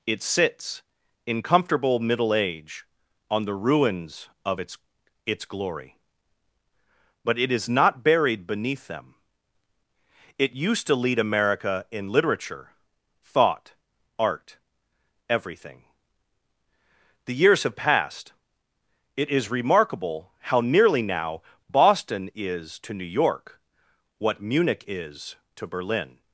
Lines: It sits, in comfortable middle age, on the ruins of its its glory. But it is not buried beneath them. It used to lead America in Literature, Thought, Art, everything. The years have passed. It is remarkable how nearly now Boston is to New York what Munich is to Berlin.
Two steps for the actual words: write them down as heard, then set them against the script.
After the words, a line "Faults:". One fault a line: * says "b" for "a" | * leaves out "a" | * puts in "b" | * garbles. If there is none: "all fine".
It sits, in comfortable middle age, on the ruins of its its glory. But it is not buried beneath them. It used to lead America in Literature, Thought, Art, everything. The years have passed. It is remarkable how nearly now Boston is to New York what Munich is to Berlin.
Faults:
all fine